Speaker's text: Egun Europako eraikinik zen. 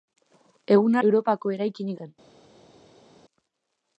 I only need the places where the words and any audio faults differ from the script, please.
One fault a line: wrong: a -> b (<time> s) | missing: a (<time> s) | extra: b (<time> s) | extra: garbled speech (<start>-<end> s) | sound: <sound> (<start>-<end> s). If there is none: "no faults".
no faults